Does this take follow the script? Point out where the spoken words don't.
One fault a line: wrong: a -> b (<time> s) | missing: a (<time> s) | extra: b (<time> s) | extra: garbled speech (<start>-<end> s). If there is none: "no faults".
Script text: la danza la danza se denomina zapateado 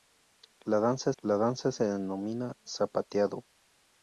no faults